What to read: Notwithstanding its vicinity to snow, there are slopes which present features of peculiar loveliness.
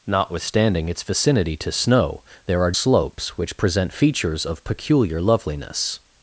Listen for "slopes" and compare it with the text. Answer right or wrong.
right